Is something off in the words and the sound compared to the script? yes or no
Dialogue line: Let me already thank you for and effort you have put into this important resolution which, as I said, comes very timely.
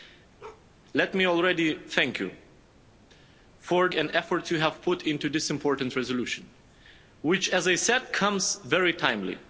yes